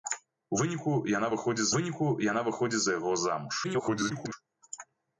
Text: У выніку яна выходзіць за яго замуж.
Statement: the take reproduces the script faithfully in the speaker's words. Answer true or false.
false